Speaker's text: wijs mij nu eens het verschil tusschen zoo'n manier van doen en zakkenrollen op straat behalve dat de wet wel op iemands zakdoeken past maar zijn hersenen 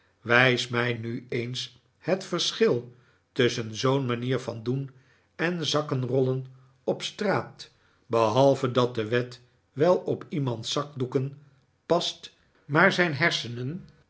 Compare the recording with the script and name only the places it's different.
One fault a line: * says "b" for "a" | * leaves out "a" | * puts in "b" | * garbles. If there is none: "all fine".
all fine